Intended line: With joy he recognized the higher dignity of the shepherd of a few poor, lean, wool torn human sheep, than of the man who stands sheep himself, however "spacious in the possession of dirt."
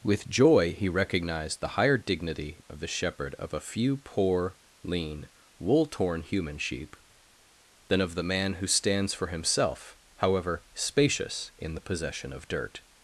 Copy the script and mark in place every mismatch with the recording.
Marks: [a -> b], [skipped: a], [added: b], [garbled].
With joy he recognized the higher dignity of the shepherd of a few poor, lean, wool torn human sheep, than of the man who stands [sheep -> for] himself, however "spacious in the possession of dirt."